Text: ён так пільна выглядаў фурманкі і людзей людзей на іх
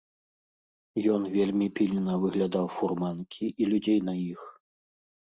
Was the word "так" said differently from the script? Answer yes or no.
yes